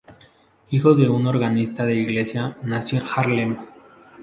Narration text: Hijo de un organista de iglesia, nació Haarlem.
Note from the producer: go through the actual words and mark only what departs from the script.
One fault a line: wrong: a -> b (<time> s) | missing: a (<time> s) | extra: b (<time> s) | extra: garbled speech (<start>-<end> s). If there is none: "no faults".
no faults